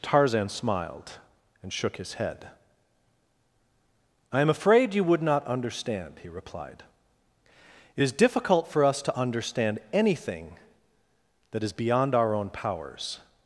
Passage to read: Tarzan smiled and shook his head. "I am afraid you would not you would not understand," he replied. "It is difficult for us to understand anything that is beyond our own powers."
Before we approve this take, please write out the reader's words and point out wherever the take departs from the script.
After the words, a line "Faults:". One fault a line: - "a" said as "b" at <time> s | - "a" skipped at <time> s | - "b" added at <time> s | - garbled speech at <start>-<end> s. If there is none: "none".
Tarzan smiled and shook his head. "I am afraid you would not understand," he replied. "It is difficult for us to understand anything that is beyond our own powers."
Faults:
- "you would not" skipped at 5.5 s